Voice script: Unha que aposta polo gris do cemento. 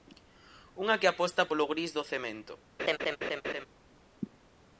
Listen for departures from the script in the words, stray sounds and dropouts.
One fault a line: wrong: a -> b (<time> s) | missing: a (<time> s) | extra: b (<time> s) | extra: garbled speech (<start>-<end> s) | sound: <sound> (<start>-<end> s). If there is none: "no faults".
sound: laugh (2.8-3.7 s)